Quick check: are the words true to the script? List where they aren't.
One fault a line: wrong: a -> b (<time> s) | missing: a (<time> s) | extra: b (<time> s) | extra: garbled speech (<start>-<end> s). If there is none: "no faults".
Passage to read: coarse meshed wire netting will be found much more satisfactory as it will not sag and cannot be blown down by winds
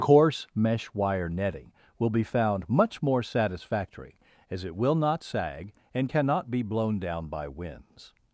wrong: meshed -> mesh (0.6 s)